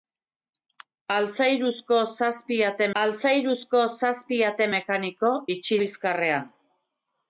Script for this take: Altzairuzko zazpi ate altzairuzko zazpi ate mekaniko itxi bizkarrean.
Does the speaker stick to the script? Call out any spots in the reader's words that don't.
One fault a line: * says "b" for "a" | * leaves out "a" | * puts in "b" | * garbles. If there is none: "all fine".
all fine